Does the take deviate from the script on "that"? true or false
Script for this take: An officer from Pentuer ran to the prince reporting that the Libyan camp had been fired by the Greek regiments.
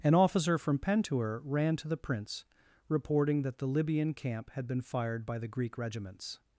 false